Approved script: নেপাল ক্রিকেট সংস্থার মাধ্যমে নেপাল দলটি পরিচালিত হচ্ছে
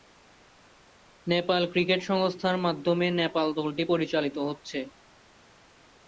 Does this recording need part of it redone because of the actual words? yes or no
no